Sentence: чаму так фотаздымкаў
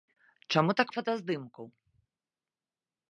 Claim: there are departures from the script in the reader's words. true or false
false